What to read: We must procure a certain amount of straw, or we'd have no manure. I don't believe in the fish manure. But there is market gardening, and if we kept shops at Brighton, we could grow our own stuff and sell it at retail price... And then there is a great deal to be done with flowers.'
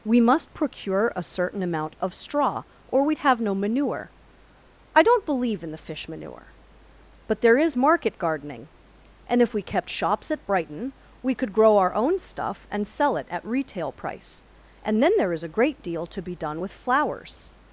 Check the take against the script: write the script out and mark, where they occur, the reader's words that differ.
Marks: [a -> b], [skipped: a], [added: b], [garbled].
We must procure a certain amount of straw, or we'd have no manure. I don't believe in the fish manure. But there is market gardening, and if we kept shops at Brighton, we could grow our own stuff and sell it at retail price... And then there is a great deal to be done with flowers.'